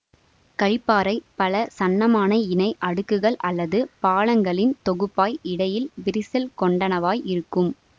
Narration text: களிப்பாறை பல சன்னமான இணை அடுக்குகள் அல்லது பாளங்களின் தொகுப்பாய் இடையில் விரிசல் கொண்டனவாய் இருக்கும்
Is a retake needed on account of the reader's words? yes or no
no